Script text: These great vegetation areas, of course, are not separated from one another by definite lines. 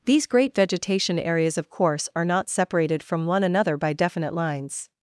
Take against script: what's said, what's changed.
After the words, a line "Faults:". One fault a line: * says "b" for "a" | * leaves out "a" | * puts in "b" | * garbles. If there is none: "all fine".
These great vegetation areas, of course, are not separated from one another by definite lines.
Faults:
all fine